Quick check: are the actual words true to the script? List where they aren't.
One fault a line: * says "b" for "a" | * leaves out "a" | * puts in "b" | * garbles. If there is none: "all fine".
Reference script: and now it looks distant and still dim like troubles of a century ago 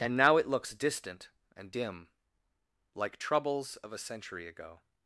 * leaves out "still"